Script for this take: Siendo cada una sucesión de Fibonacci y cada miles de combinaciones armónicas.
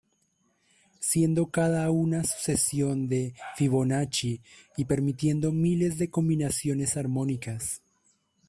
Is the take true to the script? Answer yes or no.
no